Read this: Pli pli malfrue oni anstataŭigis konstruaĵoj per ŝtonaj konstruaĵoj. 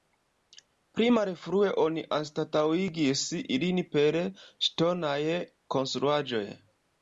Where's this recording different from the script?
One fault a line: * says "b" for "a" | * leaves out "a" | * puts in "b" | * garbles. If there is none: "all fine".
* leaves out "pli"
* says "ilin" for "konstruaĵoj"